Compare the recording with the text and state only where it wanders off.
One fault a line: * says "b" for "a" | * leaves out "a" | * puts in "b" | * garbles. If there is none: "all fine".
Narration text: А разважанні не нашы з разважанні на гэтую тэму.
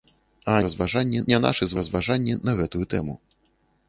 all fine